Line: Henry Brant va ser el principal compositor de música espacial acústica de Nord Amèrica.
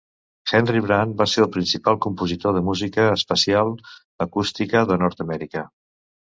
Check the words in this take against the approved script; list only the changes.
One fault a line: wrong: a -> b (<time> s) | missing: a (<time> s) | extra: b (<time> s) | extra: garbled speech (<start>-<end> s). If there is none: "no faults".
no faults